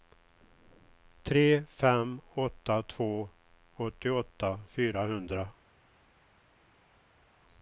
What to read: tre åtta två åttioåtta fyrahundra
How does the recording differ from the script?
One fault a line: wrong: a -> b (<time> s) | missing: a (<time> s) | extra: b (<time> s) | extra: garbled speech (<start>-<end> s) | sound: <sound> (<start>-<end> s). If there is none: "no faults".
extra: fem (1.7 s)